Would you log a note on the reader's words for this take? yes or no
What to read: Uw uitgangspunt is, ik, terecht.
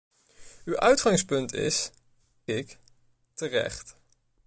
no